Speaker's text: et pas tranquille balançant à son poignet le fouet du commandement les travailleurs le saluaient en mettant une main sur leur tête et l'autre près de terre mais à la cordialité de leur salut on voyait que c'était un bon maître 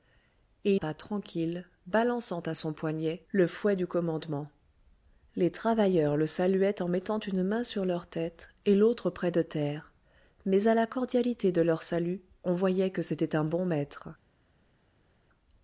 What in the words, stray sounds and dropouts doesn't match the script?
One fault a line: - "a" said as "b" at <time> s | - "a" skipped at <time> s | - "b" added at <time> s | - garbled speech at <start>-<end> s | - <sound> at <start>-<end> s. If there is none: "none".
none